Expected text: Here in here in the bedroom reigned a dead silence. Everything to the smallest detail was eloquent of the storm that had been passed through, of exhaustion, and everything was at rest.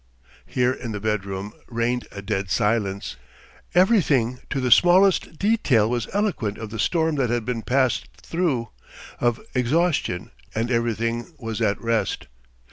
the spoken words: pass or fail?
fail